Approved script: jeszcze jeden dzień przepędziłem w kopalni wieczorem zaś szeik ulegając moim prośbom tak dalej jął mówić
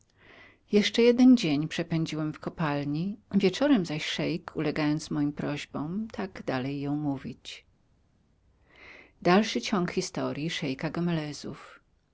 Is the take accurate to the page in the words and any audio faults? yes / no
yes